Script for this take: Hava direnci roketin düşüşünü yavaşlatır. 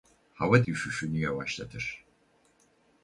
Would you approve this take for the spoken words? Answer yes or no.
no